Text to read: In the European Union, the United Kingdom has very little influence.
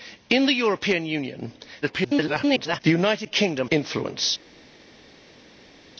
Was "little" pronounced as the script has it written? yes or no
no